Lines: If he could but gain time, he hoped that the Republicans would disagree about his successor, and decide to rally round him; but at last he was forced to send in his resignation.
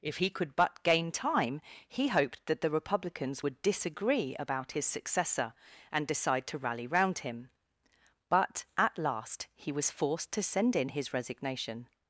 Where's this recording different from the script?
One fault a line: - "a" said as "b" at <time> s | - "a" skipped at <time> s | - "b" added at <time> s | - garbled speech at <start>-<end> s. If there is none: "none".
none